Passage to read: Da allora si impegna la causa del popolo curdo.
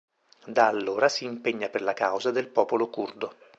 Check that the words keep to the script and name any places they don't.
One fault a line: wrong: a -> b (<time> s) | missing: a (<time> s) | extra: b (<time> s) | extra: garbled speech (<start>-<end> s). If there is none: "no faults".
extra: per (1.7 s)